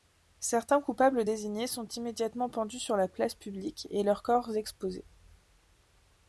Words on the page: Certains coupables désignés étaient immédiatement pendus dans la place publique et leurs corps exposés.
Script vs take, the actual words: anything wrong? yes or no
yes